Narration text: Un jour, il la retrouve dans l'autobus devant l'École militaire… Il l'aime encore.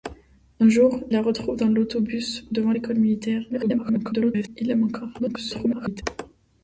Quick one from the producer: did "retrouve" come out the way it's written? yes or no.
yes